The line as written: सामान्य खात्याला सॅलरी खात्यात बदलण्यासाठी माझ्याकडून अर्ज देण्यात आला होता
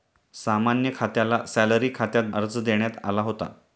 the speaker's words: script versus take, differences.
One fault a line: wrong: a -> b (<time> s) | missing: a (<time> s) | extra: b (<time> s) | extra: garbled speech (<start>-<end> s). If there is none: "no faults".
missing: बदलण्यासाठी माझ्याकडून (2.3 s)